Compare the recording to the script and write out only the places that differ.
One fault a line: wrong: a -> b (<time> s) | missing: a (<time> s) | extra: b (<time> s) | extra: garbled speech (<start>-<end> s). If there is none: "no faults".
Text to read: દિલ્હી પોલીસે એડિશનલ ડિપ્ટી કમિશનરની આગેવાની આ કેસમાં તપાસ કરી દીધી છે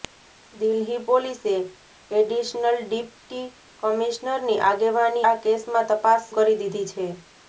no faults